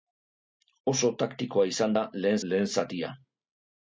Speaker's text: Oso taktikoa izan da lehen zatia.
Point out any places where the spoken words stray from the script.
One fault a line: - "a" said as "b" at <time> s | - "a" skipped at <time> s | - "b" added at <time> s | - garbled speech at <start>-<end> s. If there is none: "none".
- "lehen" added at 2.5 s